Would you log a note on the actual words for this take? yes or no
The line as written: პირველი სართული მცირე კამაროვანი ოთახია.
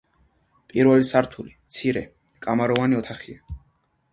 no